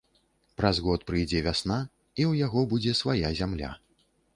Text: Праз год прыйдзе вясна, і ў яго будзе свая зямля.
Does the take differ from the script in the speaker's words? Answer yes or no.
no